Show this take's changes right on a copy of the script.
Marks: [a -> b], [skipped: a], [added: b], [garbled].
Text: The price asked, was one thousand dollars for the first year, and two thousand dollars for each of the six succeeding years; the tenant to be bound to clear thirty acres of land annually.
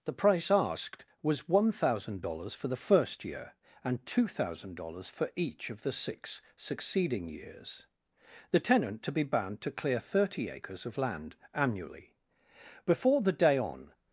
The price asked, was one thousand dollars for the first year, and two thousand dollars for each of the six succeeding years; the tenant to be bound to clear thirty acres of land annually. [added: Before the day on]